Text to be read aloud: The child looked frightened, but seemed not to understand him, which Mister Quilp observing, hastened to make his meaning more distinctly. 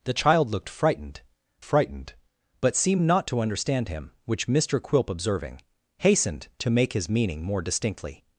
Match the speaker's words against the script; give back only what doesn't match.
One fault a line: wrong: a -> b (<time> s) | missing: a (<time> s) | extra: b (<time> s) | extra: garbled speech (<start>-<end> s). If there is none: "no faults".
extra: frightened (1.6 s)